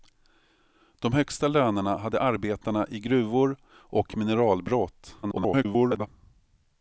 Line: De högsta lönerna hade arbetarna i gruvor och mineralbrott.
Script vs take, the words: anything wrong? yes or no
yes